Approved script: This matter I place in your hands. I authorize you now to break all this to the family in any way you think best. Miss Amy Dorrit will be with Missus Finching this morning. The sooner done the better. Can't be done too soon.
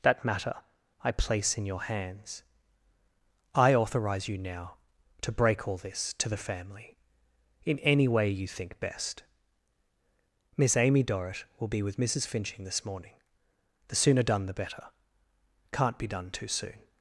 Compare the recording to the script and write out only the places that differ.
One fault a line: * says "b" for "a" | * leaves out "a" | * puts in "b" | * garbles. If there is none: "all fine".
* says "That" for "This"